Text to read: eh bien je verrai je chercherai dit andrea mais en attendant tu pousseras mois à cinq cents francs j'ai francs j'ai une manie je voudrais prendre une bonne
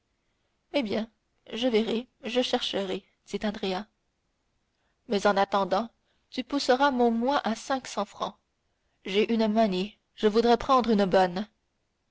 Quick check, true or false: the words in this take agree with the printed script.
false